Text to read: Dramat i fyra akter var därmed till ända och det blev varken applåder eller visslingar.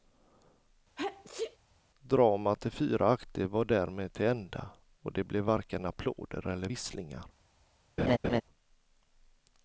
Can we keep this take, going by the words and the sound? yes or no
no